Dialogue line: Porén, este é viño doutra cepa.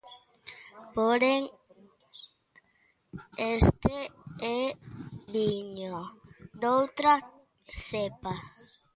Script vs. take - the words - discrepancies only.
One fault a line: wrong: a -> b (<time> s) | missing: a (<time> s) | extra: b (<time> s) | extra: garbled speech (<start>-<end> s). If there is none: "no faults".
no faults